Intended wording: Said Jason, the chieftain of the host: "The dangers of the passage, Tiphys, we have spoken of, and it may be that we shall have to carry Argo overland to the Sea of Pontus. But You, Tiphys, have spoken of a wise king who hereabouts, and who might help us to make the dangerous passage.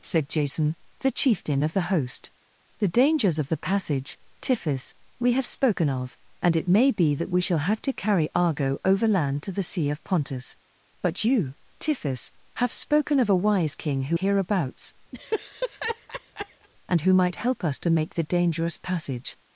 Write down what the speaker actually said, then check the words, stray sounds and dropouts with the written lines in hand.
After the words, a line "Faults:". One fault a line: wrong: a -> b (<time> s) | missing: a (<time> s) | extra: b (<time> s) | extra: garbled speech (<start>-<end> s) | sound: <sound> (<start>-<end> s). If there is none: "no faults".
Said Jason, the chieftain of the host: "The dangers of the passage, Tiphys, we have spoken of, and it may be that we shall have to carry Argo overland to the Sea of Pontus. But You, Tiphys, have spoken of a wise king who hereabouts, and who might help us to make the dangerous passage.
Faults:
sound: laugh (15.1-16.7 s)